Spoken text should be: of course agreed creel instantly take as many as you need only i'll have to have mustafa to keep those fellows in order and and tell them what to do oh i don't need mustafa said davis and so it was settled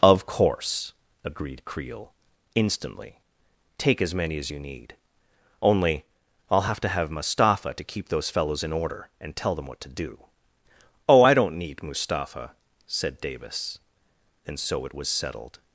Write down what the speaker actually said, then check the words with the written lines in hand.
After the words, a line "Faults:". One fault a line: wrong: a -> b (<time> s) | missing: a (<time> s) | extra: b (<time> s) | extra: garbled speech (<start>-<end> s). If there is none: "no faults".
of course agreed creel instantly take as many as you need only i'll have to have mustafa to keep those fellows in order and tell them what to do oh i don't need mustafa said davis and so it was settled
Faults:
missing: and (9.4 s)